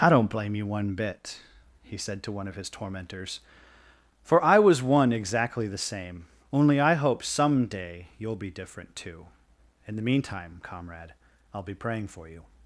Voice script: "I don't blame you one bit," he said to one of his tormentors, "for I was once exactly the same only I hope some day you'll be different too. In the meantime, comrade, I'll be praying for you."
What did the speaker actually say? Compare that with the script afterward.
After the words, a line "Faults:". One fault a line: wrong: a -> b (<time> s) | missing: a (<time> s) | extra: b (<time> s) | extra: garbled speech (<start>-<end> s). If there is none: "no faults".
"I don't blame you one bit," he said to one of his tormentors, "for I was one exactly the same only I hope some day you'll be different too. In the meantime, comrade, I'll be praying for you."
Faults:
wrong: once -> one (4.8 s)